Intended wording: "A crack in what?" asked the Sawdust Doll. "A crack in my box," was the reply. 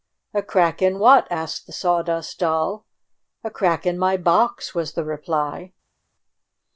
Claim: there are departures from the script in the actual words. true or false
false